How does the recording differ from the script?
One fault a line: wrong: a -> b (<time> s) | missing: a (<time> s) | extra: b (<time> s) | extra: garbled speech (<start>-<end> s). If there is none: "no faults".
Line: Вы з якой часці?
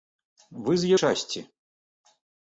missing: якой (0.9 s)